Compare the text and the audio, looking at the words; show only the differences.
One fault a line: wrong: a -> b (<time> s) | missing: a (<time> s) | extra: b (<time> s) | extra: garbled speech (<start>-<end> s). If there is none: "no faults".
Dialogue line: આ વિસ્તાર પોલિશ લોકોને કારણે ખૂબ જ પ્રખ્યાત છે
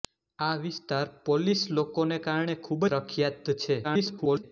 missing: જ (2.8 s)
extra: garbled speech (3.8-4.4 s)